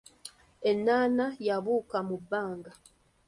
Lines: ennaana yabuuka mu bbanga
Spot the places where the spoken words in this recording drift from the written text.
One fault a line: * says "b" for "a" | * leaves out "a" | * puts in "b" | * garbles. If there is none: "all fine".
all fine